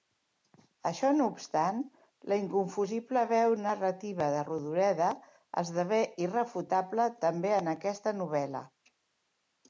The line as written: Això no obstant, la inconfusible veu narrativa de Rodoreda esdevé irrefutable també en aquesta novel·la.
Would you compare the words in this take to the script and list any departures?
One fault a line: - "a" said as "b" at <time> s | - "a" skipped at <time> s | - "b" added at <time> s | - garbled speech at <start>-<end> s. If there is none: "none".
none